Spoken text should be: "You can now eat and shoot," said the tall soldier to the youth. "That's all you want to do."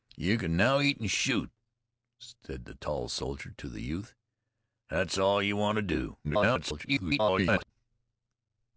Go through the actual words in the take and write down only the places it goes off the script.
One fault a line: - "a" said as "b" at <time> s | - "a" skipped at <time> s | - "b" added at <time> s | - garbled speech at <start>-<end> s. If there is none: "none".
- garbled speech at 6.2-7.7 s